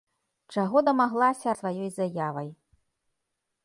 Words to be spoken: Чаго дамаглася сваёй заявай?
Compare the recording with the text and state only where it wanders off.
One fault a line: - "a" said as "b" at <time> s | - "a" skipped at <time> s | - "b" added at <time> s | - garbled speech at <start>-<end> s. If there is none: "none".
none